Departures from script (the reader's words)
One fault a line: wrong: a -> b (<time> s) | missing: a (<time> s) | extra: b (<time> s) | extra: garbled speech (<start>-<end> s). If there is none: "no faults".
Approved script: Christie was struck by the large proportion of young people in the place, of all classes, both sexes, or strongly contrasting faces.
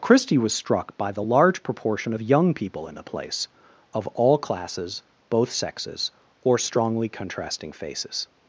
no faults